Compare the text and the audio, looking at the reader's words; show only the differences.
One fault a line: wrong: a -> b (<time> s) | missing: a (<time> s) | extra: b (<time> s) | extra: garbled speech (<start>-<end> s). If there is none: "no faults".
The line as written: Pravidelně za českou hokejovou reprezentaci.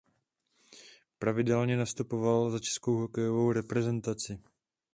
extra: nastupoval (1.8 s)